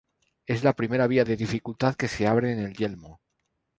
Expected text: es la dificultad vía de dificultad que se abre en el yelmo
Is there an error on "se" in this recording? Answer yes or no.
no